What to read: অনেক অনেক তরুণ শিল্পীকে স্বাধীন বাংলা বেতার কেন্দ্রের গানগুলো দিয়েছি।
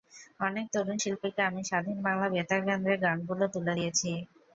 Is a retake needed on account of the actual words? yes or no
yes